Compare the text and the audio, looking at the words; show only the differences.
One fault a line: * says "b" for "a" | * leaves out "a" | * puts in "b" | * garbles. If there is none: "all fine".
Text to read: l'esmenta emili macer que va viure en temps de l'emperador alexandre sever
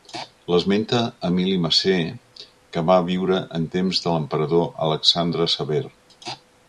all fine